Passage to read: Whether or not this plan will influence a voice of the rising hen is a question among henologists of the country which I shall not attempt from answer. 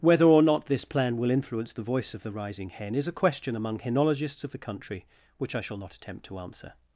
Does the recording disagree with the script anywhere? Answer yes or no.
yes